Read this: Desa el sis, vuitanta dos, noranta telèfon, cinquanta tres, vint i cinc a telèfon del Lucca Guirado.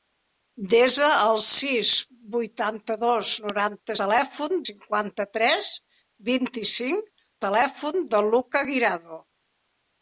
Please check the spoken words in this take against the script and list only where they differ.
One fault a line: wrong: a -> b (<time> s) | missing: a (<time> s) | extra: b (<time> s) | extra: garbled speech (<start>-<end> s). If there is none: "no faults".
no faults